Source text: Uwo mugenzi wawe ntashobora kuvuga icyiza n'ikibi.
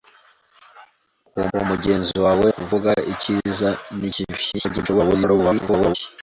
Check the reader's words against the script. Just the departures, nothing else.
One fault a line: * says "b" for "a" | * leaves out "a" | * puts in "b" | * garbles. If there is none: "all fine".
* puts in "uwo"
* leaves out "ntashobora"
* garbles